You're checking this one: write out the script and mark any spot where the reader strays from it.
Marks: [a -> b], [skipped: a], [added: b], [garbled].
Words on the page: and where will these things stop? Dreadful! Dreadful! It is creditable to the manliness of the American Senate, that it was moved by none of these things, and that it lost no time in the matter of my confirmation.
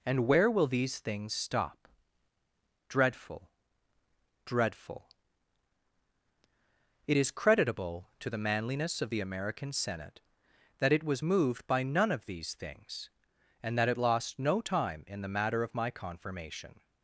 and where will these things stop? Dreadful! Dreadful! It is creditable to the manliness of the American Senate, that it was moved by none of these things, and that it lost no time in the matter of my confirmation.